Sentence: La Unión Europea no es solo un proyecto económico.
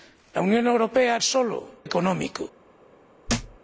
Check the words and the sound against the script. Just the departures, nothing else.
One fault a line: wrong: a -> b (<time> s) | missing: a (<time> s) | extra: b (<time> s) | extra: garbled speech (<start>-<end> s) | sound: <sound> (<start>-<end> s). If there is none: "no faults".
missing: no (1.2 s)
missing: un proyecto (1.6 s)
sound: thud (3.3-3.6 s)